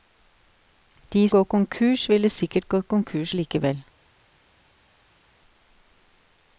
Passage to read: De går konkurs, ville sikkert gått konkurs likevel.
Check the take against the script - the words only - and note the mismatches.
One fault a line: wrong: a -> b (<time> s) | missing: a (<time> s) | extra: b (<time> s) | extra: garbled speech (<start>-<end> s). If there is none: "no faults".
no faults